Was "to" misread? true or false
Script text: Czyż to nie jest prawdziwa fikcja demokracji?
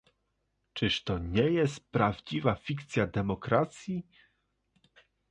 false